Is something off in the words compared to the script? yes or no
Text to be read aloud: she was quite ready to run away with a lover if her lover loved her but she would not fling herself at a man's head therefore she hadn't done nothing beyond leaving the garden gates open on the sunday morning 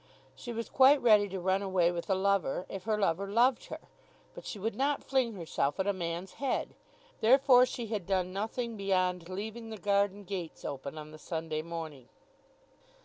yes